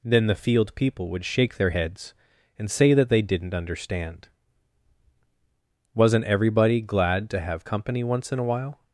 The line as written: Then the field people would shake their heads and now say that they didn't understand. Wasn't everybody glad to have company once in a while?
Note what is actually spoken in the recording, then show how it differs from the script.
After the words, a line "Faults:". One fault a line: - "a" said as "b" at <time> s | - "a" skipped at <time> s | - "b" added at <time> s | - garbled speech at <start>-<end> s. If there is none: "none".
Then the field people would shake their heads and say that they didn't understand. Wasn't everybody glad to have company once in a while?
Faults:
- "now" skipped at 2.7 s